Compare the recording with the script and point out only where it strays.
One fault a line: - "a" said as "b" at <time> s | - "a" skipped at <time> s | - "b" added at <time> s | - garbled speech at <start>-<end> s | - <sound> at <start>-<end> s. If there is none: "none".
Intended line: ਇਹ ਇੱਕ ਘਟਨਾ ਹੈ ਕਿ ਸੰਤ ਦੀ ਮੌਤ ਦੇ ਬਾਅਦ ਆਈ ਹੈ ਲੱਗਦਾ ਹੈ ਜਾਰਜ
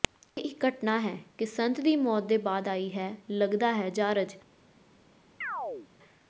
- chirp at 5.4-5.9 s